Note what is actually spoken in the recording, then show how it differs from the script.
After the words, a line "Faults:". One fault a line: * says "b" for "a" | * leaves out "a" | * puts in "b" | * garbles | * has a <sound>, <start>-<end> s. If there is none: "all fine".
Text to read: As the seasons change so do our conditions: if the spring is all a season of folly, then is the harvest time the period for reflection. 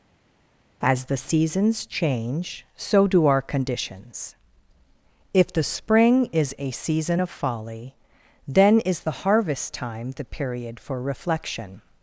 As the seasons change so do our conditions: if the spring is a season of folly, then is the harvest time the period for reflection.
Faults:
* leaves out "all"